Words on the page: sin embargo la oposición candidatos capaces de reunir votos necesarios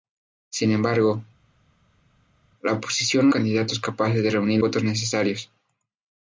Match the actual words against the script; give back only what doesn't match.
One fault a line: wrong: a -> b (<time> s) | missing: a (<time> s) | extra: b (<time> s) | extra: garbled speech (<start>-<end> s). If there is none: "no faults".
no faults